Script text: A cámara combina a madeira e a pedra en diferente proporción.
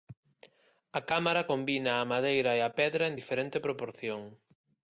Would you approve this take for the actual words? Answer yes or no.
yes